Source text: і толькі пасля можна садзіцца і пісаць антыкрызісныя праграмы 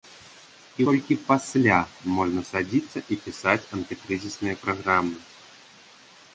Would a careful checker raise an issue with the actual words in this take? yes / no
no